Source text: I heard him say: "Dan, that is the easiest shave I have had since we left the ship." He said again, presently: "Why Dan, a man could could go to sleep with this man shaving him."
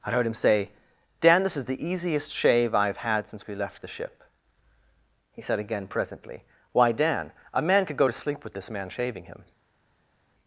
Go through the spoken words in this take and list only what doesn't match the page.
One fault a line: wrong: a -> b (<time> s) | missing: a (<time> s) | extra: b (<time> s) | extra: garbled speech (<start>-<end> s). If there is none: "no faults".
wrong: that -> this (1.4 s)
missing: could (8.0 s)